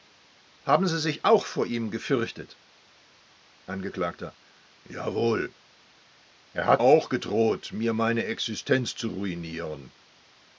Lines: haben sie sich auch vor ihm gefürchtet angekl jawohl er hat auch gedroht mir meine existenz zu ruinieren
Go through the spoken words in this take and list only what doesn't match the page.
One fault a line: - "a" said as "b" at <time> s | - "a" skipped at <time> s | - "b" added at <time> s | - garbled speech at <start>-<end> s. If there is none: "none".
none